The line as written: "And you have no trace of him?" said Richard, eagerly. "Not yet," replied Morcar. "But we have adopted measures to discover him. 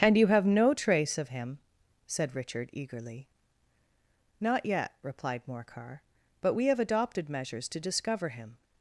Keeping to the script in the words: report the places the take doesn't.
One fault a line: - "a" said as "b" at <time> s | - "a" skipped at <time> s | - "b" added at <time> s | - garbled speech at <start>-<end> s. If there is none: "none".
none